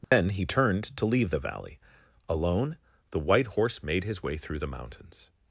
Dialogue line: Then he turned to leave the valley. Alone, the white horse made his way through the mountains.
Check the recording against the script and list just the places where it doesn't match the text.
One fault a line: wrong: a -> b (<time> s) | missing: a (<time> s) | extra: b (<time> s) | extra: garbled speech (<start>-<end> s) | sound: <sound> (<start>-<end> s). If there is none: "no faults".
sound: dropout (0.0-0.1 s)